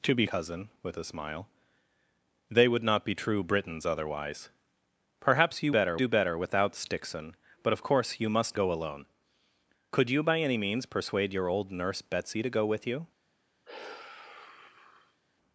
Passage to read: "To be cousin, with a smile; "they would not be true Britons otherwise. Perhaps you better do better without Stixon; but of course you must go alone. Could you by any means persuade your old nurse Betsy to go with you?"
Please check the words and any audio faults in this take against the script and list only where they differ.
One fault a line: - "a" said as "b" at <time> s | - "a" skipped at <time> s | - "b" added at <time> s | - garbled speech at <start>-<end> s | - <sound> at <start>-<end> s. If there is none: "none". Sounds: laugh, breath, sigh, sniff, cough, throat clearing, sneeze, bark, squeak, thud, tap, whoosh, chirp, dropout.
- sigh at 13.7-15.2 s